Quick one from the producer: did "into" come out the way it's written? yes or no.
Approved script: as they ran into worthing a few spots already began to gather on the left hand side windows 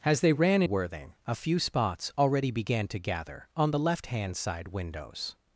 no